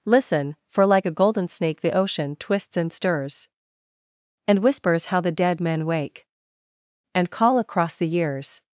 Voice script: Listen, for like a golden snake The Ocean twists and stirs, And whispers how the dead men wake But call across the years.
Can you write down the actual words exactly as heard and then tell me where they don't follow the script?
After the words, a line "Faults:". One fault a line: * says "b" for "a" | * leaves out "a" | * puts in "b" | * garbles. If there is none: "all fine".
Listen, for like a golden snake The Ocean twists and stirs, And whispers how the dead men wake And call across the years.
Faults:
* says "And" for "But"